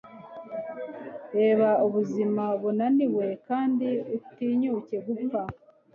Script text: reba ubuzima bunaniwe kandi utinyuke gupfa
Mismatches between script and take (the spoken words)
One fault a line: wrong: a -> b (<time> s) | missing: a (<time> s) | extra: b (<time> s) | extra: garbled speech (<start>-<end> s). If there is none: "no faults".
no faults